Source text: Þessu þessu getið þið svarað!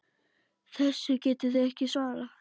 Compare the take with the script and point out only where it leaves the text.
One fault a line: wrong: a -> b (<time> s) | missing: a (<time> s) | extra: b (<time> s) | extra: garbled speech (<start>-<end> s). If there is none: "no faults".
missing: þessu (1.2 s)
extra: ekki (1.7 s)